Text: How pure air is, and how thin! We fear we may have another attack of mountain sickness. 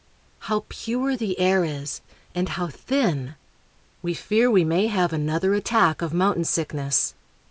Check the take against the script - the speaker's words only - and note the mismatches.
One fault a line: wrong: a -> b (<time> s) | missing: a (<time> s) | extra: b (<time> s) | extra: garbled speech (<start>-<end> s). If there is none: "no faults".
extra: the (1.1 s)